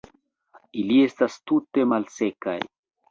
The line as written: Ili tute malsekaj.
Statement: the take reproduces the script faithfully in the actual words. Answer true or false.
false